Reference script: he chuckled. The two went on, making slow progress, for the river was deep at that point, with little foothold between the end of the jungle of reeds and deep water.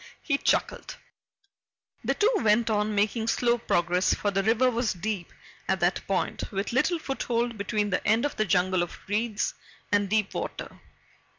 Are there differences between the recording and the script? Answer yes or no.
no